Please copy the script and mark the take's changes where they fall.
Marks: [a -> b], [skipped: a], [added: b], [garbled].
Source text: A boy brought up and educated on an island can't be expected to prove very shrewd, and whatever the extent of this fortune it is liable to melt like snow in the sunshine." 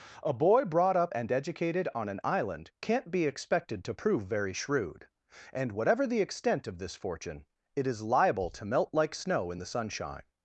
A boy brought up and educated on an island can't be expected to prove very shrewd, and whatever the extent of this fortune it is liable to melt like snow in the sunshine."